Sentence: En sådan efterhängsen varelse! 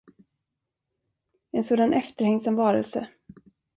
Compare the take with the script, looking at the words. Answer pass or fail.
pass